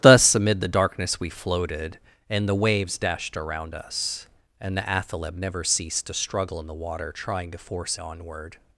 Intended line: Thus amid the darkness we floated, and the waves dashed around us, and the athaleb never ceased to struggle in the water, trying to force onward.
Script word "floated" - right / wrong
right